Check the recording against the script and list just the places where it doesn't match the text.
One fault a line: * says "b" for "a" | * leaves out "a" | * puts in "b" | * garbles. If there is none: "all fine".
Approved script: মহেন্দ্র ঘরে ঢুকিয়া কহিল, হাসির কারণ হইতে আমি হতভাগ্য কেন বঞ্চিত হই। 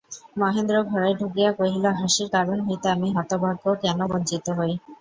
all fine